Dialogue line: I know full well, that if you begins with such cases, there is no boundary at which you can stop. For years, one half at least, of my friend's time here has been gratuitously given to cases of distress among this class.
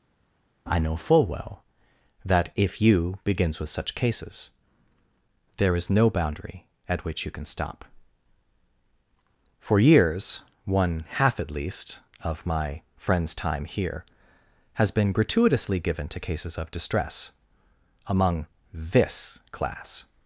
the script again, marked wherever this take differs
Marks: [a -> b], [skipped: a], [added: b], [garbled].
I know full well, that if you begins with such cases, there is no boundary at which you can stop. For years, one half at least, of my friend's time here has been gratuitously given to cases of distress among this class.